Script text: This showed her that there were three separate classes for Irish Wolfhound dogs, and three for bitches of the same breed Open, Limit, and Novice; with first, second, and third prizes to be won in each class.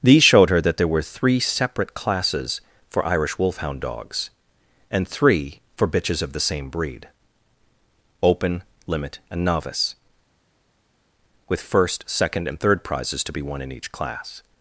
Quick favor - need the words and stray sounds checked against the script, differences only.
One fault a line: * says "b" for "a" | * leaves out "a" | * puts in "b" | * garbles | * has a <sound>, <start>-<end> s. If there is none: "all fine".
* says "These" for "This"